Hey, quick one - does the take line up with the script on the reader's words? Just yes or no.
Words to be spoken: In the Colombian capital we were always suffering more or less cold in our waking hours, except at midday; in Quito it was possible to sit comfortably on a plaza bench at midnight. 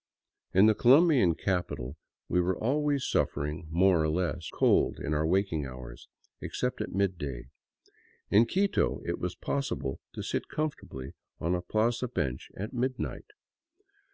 yes